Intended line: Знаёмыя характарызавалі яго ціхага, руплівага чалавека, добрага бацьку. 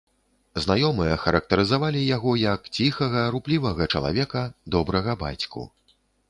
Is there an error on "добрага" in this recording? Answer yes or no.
no